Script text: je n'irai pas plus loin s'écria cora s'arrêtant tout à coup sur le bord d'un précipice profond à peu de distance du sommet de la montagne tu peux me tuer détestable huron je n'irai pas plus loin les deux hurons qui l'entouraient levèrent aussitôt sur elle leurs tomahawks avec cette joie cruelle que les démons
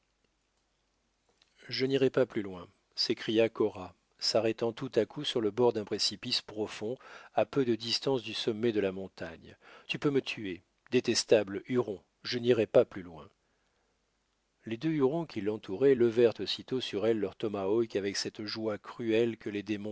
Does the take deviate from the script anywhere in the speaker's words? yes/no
no